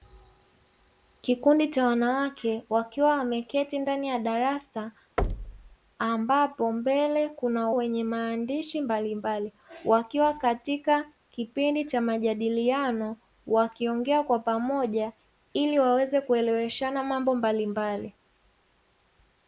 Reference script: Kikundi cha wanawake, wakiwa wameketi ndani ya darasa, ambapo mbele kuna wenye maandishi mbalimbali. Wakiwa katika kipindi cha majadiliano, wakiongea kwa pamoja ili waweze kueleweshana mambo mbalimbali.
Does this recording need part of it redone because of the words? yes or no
no